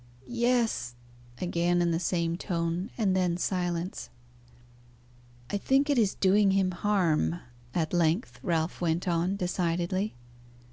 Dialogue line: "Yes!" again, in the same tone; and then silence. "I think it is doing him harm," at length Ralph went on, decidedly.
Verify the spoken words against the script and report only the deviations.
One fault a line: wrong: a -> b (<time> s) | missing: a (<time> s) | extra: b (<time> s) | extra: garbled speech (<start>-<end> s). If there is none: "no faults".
no faults